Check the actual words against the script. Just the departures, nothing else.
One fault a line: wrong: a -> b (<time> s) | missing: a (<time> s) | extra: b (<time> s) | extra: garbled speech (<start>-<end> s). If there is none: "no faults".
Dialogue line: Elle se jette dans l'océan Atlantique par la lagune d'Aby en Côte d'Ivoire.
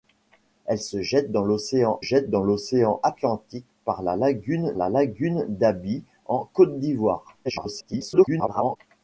extra: jette dans l'océan (2.0 s)
extra: la lagune (4.8 s)
extra: garbled speech (7.4-8.8 s)